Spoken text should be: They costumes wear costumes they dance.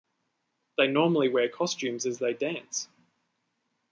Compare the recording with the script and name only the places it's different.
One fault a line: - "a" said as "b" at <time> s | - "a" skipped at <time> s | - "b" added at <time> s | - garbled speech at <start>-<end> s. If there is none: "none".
- "costumes" said as "normally" at 0.9 s
- "as" added at 2.1 s